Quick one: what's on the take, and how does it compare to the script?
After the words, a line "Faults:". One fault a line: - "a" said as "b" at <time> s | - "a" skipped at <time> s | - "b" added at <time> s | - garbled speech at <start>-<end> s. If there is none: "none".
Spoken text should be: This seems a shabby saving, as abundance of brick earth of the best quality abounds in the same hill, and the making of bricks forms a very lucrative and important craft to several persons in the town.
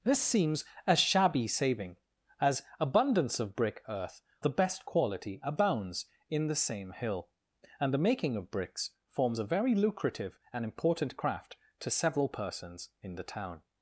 This seems a shabby saving, as abundance of brick earth the best quality abounds in the same hill, and the making of bricks forms a very lucrative and important craft to several persons in the town.
Faults:
- "of" skipped at 4.2 s